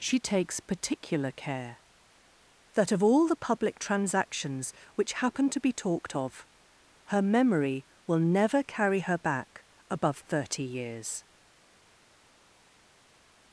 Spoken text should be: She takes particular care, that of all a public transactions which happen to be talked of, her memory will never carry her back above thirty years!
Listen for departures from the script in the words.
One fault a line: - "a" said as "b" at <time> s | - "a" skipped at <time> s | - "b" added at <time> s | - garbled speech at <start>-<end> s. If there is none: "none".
- "a" said as "the" at 3.2 s